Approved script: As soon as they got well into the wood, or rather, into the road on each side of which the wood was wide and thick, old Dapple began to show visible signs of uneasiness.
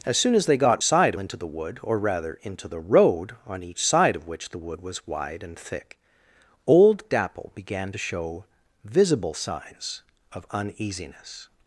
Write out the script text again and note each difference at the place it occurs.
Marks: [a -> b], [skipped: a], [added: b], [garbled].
As soon as they got [well -> side] into the wood, or rather, into the road on each side of which the wood was wide and thick, old Dapple began to show visible signs of uneasiness.